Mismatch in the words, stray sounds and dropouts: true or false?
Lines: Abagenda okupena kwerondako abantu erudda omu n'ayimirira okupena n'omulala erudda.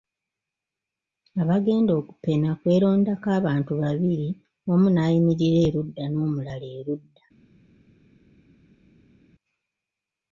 true